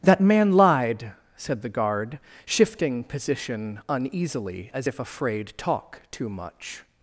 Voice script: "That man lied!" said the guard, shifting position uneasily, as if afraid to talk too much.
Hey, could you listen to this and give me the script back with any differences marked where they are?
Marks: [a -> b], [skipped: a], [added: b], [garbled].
"That man lied!" said the guard, shifting position uneasily, as if afraid [skipped: to] talk too much.